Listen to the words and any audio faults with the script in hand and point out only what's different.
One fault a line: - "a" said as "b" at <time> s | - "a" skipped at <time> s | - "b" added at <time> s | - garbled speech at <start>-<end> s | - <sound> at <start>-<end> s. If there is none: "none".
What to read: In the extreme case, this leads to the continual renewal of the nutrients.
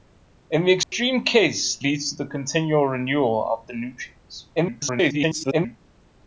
- dropout at 0.8-0.9 s
- "this" skipped at 1.8 s
- garbled speech at 4.5-5.8 s